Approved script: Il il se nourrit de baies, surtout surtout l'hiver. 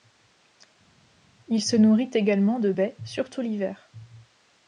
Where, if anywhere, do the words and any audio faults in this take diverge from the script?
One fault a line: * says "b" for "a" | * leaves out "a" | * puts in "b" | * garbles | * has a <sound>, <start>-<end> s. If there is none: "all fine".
* leaves out "il"
* puts in "également"
* leaves out "surtout"